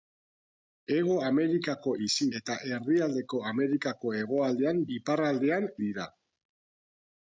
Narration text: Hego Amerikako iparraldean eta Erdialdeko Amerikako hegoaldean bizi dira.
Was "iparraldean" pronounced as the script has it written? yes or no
no